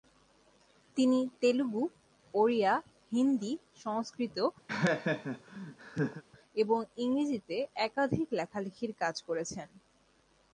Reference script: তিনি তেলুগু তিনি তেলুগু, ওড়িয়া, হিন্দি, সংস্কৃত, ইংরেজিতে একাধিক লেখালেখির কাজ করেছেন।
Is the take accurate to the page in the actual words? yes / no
no